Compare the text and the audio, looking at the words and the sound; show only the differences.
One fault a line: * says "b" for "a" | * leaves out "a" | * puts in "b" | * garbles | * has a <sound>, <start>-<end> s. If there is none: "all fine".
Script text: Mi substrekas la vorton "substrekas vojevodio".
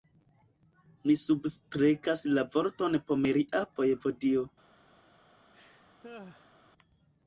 * says "pomeria" for "substrekas"
* has a laugh, 5.5-6.5 s